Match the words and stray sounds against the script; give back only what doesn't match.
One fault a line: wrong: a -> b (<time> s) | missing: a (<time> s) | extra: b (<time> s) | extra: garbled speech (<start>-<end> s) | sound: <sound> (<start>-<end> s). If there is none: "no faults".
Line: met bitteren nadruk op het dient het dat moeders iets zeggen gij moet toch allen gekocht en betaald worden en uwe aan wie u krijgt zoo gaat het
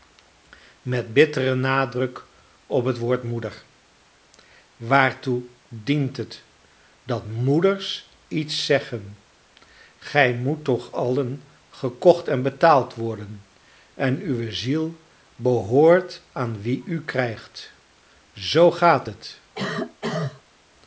extra: woord moeder waartoe (3.0 s)
extra: ziel behoort (14.5 s)
sound: cough (19.6-20.4 s)